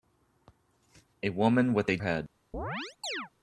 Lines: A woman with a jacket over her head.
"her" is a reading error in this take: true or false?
true